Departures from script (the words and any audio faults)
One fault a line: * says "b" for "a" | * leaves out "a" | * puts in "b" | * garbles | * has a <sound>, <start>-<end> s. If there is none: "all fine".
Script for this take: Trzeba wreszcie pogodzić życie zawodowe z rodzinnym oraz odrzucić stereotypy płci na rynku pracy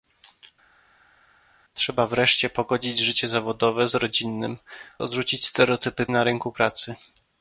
* leaves out "oraz"
* leaves out "płci"